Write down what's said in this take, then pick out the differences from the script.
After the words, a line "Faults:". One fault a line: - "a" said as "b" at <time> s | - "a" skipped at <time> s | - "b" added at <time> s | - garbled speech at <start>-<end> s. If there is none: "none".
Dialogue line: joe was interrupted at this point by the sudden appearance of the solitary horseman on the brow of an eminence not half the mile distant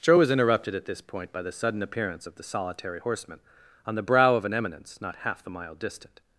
joe was interrupted at this point by the sudden appearance of the solitary horseman on the brow of an eminence not half the mile distant
Faults:
none